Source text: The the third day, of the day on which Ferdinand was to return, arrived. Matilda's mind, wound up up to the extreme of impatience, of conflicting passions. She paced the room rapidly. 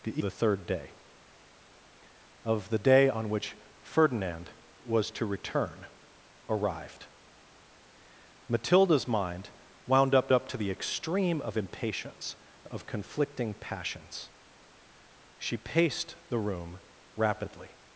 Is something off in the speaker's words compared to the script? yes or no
no